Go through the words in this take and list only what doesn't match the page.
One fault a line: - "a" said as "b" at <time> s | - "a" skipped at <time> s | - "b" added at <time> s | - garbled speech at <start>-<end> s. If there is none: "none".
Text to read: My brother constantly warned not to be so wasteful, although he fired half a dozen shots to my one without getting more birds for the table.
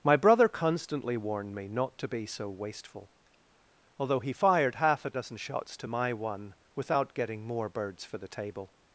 - "me" added at 1.5 s